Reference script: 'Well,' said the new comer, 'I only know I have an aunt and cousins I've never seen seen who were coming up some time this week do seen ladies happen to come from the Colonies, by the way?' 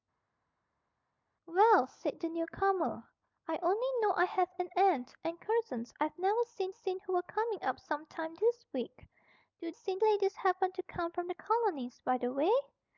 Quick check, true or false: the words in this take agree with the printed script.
true